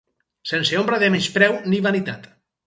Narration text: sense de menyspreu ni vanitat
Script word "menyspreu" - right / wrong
right